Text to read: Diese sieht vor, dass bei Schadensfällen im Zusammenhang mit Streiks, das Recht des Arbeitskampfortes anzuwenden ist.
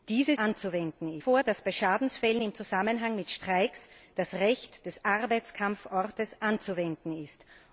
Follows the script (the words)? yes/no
no